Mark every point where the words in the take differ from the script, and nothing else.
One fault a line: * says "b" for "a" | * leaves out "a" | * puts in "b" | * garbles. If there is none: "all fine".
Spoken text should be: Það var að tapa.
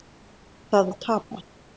* leaves out "var"